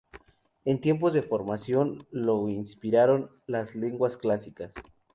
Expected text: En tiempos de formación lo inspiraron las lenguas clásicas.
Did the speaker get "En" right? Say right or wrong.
right